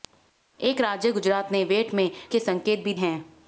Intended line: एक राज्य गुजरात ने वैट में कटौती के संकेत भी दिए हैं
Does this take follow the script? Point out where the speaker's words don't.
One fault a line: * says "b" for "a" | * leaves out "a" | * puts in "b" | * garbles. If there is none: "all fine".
* leaves out "कटौती"
* leaves out "दिए"